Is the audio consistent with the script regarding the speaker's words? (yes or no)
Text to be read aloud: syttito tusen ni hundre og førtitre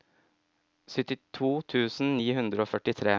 yes